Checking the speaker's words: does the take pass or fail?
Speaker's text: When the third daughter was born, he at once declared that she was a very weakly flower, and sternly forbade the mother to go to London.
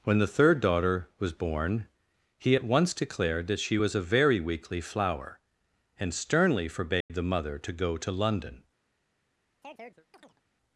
pass